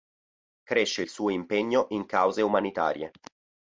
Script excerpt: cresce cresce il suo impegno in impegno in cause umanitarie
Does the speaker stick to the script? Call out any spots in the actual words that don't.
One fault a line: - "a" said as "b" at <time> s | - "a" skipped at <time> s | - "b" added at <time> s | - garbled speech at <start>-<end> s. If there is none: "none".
- "cresce" skipped at 1.0 s
- "impegno in" skipped at 2.0 s